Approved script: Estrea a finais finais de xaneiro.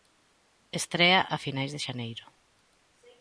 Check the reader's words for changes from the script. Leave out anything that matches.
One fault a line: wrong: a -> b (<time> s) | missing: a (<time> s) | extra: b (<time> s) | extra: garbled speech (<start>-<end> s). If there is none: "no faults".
missing: finais (1.7 s)